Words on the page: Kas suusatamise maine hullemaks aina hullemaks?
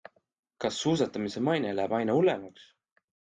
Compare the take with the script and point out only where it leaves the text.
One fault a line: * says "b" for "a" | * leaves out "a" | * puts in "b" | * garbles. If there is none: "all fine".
* says "läheb" for "hullemaks"